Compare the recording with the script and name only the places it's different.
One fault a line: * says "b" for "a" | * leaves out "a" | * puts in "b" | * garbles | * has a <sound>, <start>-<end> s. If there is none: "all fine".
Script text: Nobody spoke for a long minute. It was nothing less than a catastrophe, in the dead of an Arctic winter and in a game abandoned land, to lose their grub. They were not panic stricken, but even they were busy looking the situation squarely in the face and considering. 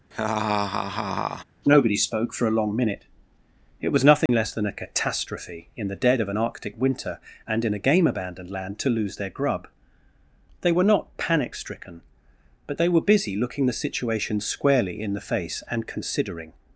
* has a laugh, 0.1-1.4 s
* has a dropout, 4.3-4.3 s
* leaves out "even"